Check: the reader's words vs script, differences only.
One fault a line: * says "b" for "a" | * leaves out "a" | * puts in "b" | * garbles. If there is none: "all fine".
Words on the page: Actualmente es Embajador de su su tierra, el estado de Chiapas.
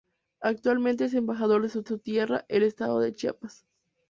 all fine